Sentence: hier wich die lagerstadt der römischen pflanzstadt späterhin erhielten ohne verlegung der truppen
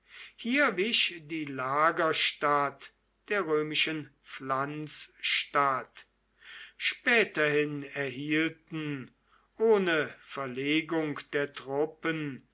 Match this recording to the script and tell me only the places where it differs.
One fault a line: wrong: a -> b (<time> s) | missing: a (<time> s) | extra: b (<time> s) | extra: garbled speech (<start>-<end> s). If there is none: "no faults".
no faults